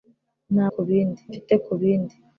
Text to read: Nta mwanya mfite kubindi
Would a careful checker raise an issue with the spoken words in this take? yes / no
yes